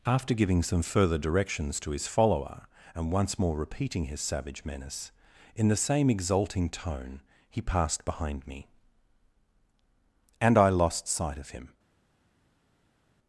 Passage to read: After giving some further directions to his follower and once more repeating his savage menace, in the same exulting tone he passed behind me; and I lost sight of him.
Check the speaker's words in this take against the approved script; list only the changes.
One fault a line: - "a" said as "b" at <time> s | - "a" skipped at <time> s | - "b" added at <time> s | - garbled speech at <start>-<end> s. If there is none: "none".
none